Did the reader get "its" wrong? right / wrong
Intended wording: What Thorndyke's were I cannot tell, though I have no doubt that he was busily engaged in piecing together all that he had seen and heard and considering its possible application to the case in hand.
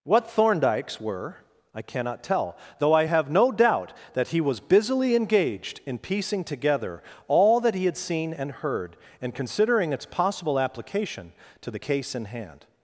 right